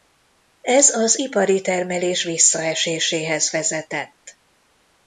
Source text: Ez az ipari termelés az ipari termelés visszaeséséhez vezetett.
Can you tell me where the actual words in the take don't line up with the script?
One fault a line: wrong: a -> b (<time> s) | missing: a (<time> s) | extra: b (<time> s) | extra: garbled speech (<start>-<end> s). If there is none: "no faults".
missing: az ipari termelés (2.2 s)